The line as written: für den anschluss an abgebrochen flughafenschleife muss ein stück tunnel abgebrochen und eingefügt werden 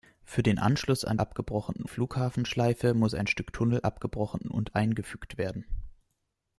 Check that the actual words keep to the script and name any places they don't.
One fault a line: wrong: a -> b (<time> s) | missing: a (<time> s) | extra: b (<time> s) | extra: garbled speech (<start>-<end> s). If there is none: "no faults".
no faults